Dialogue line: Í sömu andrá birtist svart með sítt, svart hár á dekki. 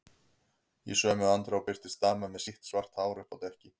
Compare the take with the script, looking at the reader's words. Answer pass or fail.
fail